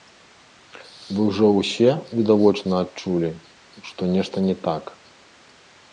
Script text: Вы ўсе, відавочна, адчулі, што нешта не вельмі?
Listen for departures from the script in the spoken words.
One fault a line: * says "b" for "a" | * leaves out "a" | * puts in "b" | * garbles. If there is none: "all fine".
* puts in "ўжо"
* says "так" for "вельмі"